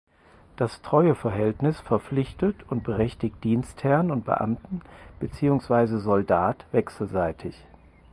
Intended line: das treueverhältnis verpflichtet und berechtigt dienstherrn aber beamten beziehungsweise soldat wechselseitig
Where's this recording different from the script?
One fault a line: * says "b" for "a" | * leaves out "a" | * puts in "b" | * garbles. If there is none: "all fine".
* says "und" for "aber"